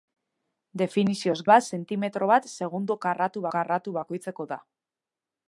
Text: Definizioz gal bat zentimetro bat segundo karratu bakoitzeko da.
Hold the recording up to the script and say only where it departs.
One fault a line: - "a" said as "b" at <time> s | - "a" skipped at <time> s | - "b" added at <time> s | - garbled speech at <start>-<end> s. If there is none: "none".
- "gal" skipped at 1.4 s
- "karratu" added at 3.6 s